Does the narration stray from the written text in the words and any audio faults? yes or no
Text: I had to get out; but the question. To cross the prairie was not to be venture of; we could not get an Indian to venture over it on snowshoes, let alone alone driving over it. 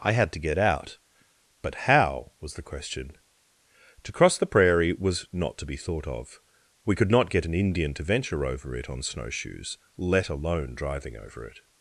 yes